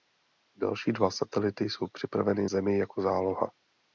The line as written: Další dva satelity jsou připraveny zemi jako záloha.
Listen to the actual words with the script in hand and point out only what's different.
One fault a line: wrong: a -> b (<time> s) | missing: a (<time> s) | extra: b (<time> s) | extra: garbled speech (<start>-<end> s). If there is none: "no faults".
no faults